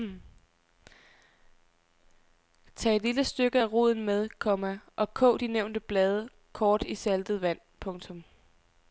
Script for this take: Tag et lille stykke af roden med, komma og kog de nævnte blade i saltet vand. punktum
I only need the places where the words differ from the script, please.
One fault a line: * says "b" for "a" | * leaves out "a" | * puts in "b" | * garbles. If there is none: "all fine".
* puts in "kort"